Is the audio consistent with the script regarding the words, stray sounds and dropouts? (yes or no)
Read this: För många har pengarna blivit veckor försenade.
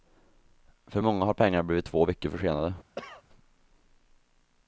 no